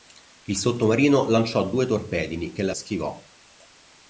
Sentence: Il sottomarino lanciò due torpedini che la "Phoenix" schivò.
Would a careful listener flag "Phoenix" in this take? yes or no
yes